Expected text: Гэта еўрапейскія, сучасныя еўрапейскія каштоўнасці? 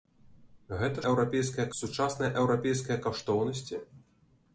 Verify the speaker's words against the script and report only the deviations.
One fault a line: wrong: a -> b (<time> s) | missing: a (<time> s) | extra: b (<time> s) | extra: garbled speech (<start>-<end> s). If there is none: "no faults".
no faults